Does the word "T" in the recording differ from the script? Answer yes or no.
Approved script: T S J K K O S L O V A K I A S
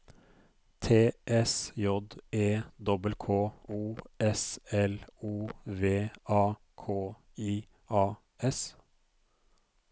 no